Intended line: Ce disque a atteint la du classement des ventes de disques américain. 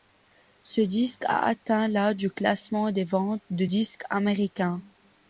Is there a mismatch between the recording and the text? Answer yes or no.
no